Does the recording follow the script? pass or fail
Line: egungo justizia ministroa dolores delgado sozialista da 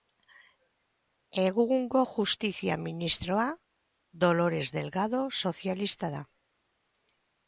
pass